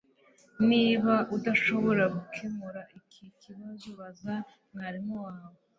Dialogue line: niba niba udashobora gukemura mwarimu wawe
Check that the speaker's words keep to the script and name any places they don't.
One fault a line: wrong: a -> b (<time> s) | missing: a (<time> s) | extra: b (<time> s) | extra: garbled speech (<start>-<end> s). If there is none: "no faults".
missing: niba (1.1 s)
extra: iki kibazo baza (3.0 s)